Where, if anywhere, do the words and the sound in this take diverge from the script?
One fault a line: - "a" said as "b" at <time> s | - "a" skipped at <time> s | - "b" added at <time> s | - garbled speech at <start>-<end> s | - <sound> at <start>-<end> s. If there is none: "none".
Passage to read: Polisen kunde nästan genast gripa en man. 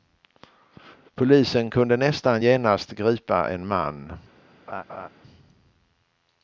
- laugh at 4.7-5.1 s